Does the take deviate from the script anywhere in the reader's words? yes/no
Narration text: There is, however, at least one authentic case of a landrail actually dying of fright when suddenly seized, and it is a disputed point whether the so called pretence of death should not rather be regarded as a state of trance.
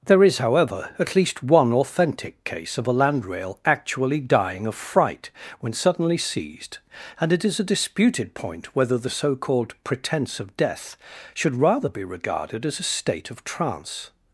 yes